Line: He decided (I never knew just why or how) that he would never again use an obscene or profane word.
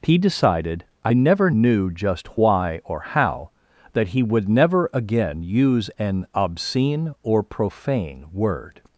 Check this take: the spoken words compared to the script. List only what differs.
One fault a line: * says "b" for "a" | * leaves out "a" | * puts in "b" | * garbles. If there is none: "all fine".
all fine